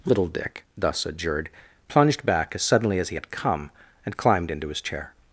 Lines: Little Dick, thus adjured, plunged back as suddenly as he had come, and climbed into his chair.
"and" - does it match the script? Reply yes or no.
yes